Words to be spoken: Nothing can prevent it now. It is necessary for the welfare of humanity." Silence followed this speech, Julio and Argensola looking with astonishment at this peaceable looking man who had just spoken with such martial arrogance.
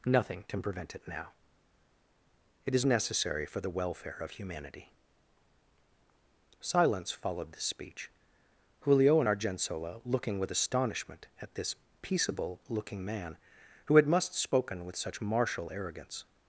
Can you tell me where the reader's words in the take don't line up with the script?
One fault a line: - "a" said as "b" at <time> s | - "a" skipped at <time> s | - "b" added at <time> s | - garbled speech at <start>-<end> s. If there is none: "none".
- "just" said as "must" at 14.1 s